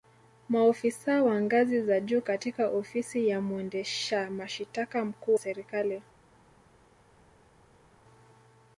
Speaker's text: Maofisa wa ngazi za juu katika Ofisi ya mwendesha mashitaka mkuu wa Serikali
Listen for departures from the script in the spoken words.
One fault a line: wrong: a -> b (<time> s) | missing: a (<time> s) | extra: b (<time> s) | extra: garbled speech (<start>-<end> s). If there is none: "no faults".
missing: wa (5.3 s)